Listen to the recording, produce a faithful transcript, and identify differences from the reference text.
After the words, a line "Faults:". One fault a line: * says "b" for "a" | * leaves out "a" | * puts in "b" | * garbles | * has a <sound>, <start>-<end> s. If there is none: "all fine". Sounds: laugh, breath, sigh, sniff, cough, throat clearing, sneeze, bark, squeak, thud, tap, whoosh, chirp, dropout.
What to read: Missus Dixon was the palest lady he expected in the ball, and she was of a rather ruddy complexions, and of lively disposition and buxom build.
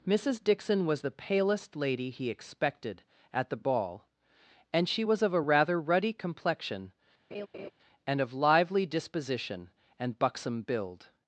Missus Dixon was the palest lady he expected at the ball, and she was of a rather ruddy complexion, and of lively disposition and buxom build.
Faults:
* says "at" for "in"
* says "complexion" for "complexions"
* has a laugh, 7.3-7.7 s